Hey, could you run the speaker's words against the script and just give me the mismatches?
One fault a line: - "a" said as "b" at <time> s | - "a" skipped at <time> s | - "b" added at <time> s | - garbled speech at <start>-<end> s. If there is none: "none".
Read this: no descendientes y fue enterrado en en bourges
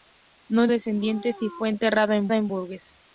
none